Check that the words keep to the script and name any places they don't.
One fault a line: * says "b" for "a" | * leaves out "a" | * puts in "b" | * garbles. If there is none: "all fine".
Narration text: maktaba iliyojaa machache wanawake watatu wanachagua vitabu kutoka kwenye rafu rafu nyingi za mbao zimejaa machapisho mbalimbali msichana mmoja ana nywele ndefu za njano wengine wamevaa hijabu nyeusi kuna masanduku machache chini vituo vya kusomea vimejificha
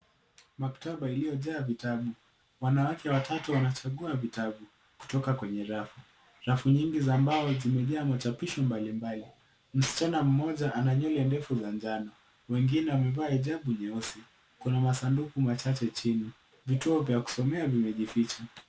* says "vitabu" for "machache"